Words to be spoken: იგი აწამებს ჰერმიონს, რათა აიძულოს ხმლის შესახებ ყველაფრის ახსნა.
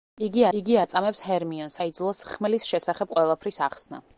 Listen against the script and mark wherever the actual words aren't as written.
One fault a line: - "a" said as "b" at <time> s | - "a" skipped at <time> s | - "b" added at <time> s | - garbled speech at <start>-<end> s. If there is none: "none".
- "იგი" added at 0.6 s
- "რათა" skipped at 1.8 s